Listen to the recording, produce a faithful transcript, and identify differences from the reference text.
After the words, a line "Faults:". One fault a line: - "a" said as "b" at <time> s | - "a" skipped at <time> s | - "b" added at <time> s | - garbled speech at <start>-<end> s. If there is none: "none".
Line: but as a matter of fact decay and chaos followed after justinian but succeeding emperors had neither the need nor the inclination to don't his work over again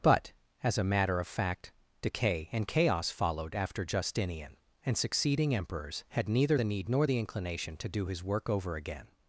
but as a matter of fact decay and chaos followed after justinian and succeeding emperors had neither the need nor the inclination to do his work over again
Faults:
- "but" said as "and" at 4.8 s
- "don't" said as "do" at 7.9 s